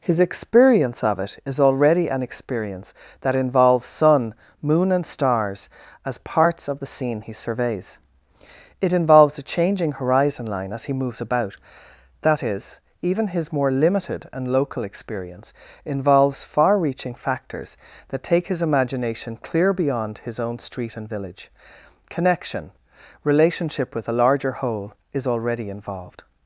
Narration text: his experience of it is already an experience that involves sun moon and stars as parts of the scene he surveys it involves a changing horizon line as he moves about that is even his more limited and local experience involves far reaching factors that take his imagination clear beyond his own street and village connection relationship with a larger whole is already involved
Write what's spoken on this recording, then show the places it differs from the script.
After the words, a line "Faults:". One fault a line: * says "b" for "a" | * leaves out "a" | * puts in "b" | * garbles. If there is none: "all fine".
his experience of it is already an experience that involves sun moon and stars as parts of the scene he surveys it involves a changing horizon line as he moves about that is even his more limited and local experience involves far reaching factors that take his imagination clear beyond his own street and village connection relationship with a larger whole is already involved
Faults:
all fine